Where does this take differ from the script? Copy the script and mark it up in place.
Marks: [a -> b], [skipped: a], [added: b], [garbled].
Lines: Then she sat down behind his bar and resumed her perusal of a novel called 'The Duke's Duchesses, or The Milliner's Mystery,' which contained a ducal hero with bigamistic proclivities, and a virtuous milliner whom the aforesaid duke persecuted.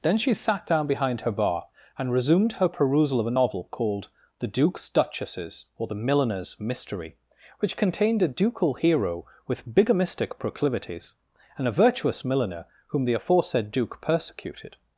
Then she sat down behind [his -> her] bar and resumed her perusal of a novel called 'The Duke's Duchesses, or The Milliner's Mystery,' which contained a ducal hero with bigamistic proclivities, and a virtuous milliner whom the aforesaid duke persecuted.